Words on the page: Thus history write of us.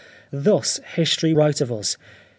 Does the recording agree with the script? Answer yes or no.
yes